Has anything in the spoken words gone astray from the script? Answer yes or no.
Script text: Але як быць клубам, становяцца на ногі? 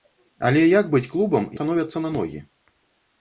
no